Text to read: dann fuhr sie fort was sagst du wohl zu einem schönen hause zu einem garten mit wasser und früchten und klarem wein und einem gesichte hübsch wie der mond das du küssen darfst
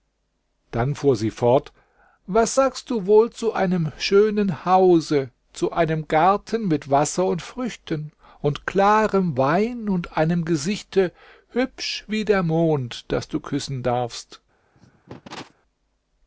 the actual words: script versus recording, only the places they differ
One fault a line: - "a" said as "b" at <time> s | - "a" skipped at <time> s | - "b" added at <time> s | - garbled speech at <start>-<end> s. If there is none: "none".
none